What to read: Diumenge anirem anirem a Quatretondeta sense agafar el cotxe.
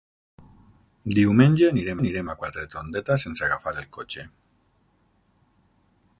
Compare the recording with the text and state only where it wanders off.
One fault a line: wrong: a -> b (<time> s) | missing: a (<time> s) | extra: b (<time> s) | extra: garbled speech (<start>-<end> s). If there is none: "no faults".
no faults